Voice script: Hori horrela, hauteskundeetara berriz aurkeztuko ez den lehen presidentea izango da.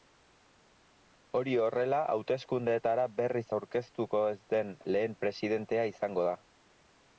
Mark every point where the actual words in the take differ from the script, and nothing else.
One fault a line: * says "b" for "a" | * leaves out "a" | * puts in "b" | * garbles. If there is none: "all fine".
all fine